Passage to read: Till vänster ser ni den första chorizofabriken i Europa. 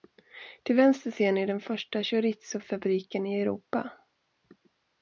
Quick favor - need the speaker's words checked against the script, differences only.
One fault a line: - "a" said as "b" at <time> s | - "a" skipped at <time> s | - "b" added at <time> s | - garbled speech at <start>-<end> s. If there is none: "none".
none